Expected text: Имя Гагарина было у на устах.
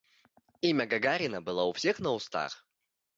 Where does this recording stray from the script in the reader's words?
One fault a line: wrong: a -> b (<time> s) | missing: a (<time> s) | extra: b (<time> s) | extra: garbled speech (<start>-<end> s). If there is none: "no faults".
extra: всех (1.7 s)